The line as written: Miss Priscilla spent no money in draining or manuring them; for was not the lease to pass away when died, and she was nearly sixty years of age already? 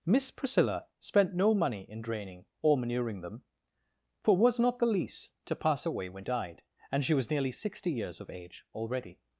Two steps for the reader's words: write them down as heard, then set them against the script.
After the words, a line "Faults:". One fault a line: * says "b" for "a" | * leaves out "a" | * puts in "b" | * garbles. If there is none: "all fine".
Miss Priscilla spent no money in draining or manuring them; for was not the lease to pass away when died, and she was nearly sixty years of age already?
Faults:
all fine